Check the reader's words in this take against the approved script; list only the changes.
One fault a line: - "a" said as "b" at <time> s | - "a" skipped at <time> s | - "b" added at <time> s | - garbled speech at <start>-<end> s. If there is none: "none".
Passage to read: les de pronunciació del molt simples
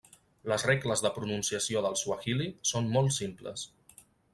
- "regles" added at 0.7 s
- "suahili són" added at 2.0 s